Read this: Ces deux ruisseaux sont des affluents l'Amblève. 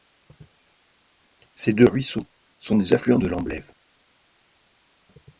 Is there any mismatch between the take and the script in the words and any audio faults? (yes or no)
yes